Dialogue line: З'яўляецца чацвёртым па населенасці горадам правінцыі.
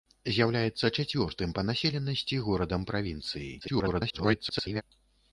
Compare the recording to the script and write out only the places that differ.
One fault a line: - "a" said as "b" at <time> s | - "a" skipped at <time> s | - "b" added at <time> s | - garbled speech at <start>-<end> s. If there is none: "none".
- garbled speech at 3.6-4.8 s